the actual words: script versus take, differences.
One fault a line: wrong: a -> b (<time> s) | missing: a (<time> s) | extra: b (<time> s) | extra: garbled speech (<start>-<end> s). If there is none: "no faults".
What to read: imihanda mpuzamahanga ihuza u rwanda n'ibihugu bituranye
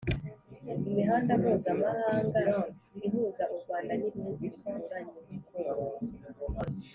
no faults